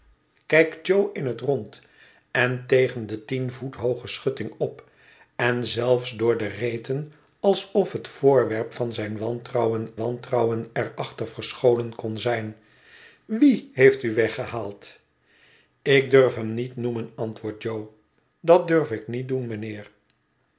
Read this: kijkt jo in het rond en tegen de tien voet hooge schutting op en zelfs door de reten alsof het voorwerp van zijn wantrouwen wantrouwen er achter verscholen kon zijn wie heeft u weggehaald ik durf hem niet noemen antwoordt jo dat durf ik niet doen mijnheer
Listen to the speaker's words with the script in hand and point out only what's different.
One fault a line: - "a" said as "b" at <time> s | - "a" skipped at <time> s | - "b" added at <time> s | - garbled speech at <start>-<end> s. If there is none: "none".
none